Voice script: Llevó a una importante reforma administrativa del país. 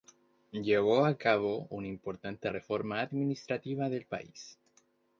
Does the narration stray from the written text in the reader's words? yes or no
yes